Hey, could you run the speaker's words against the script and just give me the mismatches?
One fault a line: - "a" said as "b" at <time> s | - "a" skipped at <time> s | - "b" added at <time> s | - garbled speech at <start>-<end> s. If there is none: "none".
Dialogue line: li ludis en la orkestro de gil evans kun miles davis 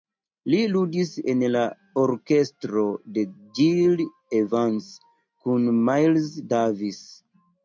none